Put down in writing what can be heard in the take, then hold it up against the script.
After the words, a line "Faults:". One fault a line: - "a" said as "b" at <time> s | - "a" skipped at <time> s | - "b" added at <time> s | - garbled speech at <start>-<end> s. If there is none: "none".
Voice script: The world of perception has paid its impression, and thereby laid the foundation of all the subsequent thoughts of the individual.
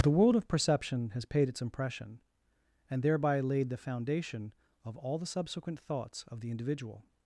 The world of perception has paid its impression, and thereby laid the foundation of all the subsequent thoughts of the individual.
Faults:
none